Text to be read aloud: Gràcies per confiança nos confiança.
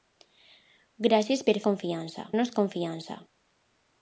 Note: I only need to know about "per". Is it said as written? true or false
true